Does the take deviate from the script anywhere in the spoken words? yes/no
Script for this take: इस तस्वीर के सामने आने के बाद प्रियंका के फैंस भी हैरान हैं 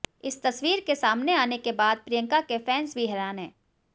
no